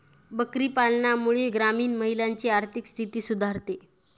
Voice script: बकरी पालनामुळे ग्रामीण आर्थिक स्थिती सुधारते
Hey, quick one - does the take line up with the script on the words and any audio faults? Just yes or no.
no